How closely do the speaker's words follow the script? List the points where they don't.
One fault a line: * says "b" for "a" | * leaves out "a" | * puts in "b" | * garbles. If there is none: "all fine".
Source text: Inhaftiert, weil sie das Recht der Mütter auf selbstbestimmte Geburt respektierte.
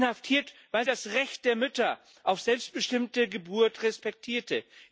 * leaves out "sie"